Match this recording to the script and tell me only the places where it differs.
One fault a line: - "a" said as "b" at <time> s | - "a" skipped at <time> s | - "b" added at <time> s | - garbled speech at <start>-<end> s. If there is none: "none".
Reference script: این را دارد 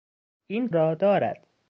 none